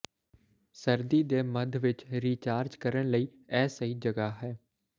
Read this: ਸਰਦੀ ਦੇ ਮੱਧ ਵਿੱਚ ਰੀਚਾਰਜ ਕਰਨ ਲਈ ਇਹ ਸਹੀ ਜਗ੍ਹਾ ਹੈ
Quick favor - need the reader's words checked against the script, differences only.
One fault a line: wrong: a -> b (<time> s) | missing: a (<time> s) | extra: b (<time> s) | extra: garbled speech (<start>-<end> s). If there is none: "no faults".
no faults